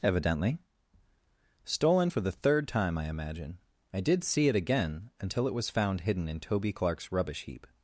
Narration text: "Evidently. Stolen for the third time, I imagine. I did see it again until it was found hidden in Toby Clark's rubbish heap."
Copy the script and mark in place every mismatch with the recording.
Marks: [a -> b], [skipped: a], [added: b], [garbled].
"Evidently. Stolen for the third time, I imagine. I did see it again until it was found hidden in Toby Clark's rubbish heap."